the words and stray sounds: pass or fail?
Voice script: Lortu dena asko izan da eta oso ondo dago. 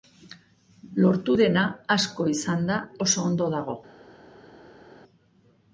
fail